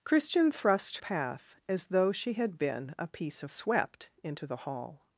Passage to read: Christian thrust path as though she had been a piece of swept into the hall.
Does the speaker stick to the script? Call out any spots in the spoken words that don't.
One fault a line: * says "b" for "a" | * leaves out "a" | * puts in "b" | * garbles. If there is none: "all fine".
all fine